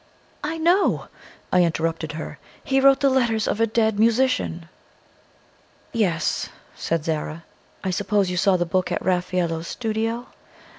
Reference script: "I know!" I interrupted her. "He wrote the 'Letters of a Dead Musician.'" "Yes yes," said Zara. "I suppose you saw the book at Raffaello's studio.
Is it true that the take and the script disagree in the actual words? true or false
true